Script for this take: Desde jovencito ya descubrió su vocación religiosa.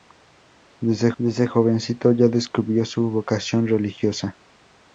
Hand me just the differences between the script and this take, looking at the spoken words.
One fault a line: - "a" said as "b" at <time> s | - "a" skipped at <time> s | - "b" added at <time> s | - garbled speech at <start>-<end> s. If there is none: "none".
- "desde" added at 1.2 s